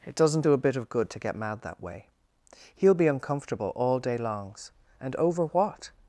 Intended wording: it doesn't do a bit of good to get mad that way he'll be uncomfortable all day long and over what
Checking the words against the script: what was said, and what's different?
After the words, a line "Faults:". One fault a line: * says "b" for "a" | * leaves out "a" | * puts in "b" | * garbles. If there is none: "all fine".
it doesn't do a bit of good to get mad that way he'll be uncomfortable all day longs and over what
Faults:
* says "longs" for "long"